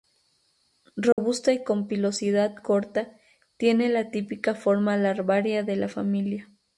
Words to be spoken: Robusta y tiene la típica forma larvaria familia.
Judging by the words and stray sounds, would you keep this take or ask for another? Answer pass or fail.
fail